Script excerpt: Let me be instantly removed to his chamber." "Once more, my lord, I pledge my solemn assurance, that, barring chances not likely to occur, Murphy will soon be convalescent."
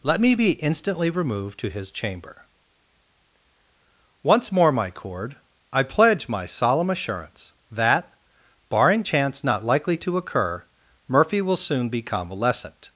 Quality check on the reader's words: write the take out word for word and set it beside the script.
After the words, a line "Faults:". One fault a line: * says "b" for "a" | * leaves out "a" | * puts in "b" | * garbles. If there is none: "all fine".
Let me be instantly removed to his chamber." "Once more, my cord, I pledge my solemn assurance, that, barring chance not likely to occur, Murphy will soon be convalescent."
Faults:
* says "cord" for "lord"
* says "chance" for "chances"